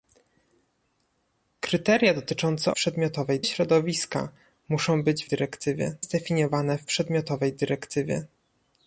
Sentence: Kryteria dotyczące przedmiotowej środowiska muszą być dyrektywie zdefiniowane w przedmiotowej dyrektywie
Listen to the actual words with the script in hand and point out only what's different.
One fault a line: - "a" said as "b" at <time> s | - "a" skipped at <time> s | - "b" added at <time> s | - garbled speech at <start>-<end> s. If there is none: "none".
none